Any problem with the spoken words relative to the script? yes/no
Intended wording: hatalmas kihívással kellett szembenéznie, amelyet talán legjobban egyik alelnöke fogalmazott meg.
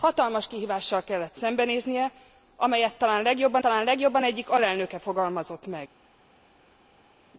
yes